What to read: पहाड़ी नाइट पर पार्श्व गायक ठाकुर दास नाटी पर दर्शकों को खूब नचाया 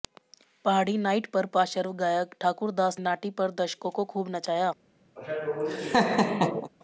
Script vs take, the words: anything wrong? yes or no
no